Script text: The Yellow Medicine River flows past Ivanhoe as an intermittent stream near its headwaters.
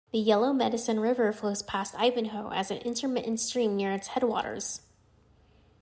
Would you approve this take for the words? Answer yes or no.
yes